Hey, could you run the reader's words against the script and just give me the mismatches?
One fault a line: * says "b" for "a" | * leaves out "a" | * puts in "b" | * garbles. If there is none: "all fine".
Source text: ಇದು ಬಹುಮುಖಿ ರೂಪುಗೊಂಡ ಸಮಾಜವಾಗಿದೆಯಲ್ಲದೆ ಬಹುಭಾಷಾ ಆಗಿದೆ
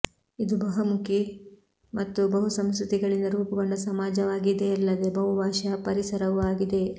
* puts in "ಮತ್ತು ಬಹುಸಂಸ್ಕೃತಿಗಳಿಂದ"
* puts in "ಪರಿಸರವೂ"